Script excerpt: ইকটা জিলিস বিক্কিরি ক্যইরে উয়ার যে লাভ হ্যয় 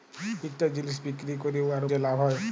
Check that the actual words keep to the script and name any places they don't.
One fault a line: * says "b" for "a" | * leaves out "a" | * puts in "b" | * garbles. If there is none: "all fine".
all fine